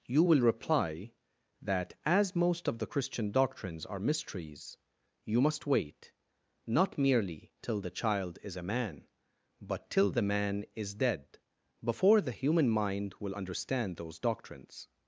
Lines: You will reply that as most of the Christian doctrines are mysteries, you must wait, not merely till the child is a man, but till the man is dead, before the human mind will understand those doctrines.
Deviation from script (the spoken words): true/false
false